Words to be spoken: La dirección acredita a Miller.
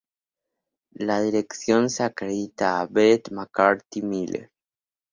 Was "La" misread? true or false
false